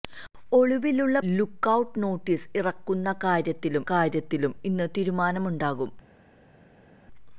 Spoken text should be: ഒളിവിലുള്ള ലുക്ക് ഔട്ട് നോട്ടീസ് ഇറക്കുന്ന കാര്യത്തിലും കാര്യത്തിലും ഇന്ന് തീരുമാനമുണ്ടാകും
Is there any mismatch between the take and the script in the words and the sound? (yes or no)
no